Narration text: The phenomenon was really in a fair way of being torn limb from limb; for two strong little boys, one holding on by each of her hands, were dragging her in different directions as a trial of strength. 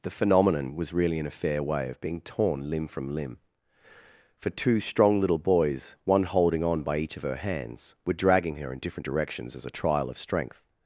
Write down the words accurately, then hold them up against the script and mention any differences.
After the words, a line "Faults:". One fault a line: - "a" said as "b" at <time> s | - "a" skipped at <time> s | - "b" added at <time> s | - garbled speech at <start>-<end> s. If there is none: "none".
The phenomenon was really in a fair way of being torn limb from limb; for two strong little boys, one holding on by each of her hands, were dragging her in different directions as a trial of strength.
Faults:
none